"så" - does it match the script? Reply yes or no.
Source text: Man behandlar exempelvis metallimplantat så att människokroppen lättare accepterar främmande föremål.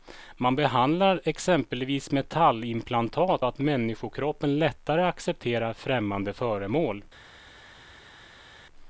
no